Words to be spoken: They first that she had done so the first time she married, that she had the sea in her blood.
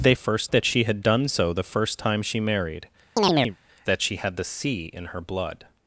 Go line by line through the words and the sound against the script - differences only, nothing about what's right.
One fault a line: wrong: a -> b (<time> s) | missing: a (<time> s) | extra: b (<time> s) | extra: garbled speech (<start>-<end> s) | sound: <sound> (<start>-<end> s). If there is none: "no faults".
sound: chirp (3.2-3.6 s)